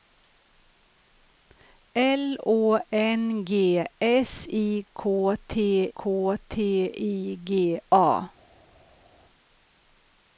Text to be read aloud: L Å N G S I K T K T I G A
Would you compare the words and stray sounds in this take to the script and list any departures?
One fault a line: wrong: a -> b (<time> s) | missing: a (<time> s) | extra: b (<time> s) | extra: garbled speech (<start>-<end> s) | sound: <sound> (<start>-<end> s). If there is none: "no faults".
no faults